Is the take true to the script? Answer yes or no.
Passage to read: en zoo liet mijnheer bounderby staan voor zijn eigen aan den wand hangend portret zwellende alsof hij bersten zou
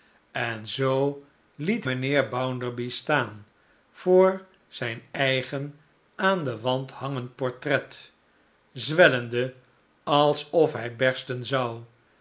yes